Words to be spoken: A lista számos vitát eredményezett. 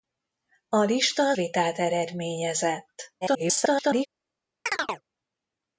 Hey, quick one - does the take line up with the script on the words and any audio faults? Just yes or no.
no